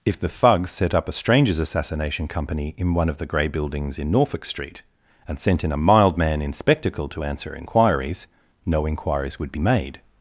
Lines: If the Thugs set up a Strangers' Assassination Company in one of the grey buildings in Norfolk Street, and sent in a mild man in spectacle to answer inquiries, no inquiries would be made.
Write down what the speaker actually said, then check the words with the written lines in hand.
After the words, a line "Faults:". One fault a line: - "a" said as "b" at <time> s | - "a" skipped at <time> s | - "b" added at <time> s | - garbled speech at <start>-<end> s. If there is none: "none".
If the Thugs set up a Strangers' Assassination Company in one of the grey buildings in Norfolk Street, and sent in a mild man in spectacle to answer inquiries, no inquiries would be made.
Faults:
none